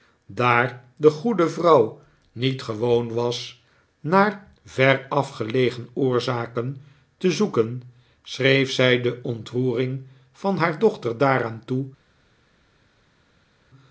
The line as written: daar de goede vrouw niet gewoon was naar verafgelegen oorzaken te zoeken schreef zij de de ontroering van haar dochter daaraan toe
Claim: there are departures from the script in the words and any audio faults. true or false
true